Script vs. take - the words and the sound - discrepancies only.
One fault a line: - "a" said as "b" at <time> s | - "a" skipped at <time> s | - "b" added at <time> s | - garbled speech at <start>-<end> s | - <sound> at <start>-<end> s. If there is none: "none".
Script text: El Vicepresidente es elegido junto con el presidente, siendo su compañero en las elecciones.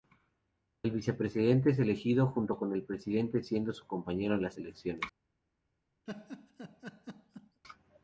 - laugh at 6.1-7.6 s